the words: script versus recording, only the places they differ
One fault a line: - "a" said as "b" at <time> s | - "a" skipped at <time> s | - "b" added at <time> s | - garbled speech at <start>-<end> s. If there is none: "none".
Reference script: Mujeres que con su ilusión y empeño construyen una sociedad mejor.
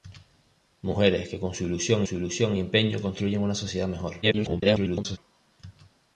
- "su ilusión" added at 2.0 s
- garbled speech at 4.2-5.2 s